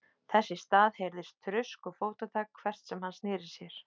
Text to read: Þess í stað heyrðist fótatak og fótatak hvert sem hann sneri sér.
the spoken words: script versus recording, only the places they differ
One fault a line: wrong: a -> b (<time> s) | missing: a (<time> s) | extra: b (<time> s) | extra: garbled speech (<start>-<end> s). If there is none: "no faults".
wrong: fótatak -> þrusk (1.5 s)